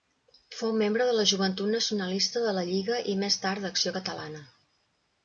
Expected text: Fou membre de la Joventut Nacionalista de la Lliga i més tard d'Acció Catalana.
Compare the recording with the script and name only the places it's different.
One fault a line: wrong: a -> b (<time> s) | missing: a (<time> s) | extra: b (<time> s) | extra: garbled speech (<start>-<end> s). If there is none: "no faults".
no faults